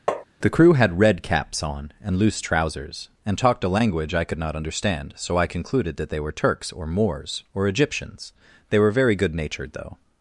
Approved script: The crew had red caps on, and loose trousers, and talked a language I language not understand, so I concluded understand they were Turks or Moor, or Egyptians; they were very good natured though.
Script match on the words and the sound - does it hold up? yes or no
no